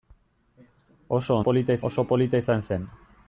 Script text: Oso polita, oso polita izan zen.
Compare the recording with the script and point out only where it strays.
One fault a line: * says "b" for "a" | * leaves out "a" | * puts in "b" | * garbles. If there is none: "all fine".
all fine